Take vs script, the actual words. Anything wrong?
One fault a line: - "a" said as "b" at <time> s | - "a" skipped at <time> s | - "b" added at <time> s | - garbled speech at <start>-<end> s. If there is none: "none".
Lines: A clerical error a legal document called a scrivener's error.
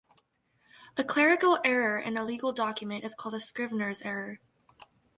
- "in" added at 2.0 s
- "is" added at 3.0 s